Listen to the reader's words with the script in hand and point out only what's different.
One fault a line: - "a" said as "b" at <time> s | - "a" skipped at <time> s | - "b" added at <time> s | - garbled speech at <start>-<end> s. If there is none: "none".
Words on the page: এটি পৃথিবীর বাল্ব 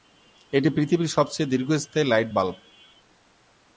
- "সবচেয়ে দীর্ঘস্থায়ী লাইট" added at 1.1 s